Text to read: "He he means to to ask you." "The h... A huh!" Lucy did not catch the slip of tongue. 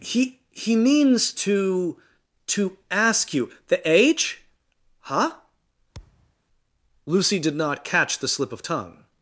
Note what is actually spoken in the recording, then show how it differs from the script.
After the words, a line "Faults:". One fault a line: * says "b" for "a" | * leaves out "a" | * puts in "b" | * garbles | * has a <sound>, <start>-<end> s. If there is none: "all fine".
"He he means to to ask you." "The age huh!" Lucy did not catch the slip of tongue.
Faults:
* says "age" for "h A"
* has a thud, 5.9-6.3 s